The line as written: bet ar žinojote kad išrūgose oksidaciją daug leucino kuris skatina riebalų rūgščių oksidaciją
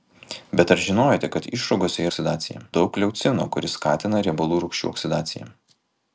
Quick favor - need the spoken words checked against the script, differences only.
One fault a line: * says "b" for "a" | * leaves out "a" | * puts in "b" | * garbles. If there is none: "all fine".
all fine